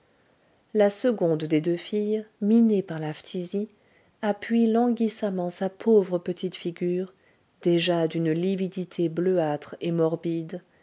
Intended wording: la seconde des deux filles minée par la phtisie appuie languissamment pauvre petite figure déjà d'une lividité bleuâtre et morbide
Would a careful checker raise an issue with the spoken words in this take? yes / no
yes